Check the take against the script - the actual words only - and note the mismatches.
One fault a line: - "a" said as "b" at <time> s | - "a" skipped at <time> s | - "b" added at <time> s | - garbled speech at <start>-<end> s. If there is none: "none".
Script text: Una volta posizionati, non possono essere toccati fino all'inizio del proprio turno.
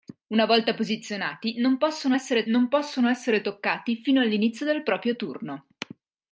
- "non possono essere" added at 2.5 s